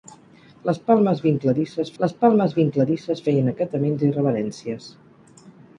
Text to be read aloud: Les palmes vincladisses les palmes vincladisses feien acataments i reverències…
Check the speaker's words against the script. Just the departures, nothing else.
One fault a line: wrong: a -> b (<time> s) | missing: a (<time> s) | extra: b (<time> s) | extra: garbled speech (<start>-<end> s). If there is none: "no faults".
no faults